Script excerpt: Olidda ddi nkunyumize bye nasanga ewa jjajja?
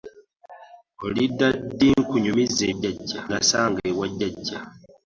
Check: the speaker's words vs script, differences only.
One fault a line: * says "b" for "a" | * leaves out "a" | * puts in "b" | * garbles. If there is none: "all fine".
* says "jjajja" for "bye"